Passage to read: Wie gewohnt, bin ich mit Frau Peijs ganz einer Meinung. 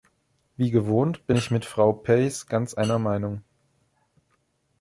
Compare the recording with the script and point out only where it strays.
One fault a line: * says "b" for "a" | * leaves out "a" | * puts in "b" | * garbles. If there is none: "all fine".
all fine